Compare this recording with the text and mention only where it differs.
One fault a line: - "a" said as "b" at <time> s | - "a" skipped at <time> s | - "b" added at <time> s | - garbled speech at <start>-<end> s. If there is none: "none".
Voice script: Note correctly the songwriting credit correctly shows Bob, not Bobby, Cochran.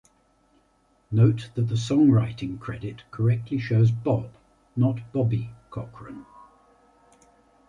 - "correctly" said as "that" at 1.5 s